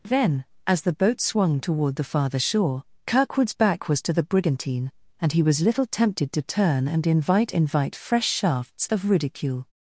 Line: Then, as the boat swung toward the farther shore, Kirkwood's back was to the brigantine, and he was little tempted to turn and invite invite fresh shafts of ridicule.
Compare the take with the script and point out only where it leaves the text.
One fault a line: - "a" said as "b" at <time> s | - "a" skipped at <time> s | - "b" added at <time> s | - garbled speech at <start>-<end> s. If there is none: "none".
none